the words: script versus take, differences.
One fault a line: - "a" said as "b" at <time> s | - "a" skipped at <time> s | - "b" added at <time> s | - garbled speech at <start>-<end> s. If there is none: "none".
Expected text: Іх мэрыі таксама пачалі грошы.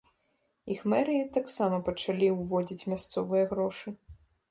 - "ўводзіць мясцовыя" added at 2.4 s